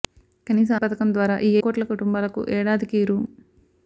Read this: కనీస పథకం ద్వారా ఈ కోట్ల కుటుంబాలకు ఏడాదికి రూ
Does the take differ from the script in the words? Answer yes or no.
no